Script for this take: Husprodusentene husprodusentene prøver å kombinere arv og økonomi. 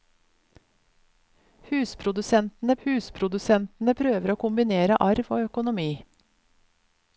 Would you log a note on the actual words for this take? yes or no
no